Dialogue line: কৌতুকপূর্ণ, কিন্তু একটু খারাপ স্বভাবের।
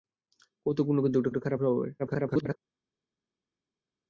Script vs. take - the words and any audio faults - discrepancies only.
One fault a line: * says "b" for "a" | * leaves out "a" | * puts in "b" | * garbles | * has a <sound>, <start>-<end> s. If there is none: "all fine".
* puts in "একটু"
* garbles